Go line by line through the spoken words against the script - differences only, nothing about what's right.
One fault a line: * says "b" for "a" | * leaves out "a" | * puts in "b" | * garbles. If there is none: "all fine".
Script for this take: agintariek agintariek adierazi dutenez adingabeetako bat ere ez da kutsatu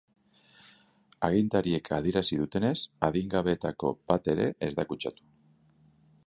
* leaves out "agintariek"